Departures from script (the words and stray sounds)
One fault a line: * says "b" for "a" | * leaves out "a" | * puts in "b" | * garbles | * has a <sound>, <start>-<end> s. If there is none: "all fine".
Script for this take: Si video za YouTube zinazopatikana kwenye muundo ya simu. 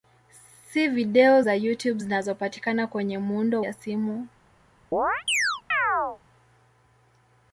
* has a chirp, 4.9-6.2 s